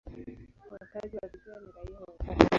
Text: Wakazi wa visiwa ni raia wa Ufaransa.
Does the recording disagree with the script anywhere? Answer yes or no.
no